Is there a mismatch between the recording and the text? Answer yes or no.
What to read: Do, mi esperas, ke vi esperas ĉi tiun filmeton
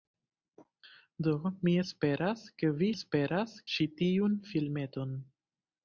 no